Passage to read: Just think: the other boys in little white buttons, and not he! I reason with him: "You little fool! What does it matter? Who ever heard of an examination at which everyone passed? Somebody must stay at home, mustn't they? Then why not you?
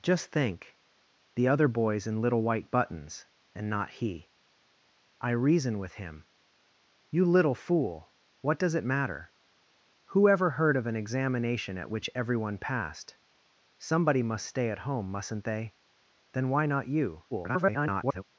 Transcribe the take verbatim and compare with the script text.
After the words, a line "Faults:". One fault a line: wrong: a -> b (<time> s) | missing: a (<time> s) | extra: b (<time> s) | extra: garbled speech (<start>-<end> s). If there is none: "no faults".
Just think: the other boys in little white buttons, and not he! I reason with him: "You little fool! What does it matter? Who ever heard of an examination at which everyone passed? Somebody must stay at home, mustn't they? Then why not you? [garbled]
Faults:
extra: garbled speech (17.3-18.2 s)